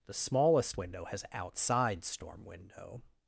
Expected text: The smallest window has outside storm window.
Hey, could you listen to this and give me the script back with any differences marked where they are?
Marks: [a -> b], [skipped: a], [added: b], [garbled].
The smallest window has outside storm window.